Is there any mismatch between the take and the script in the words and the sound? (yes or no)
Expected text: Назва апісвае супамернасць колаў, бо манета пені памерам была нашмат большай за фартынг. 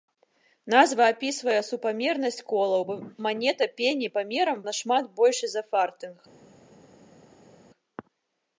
yes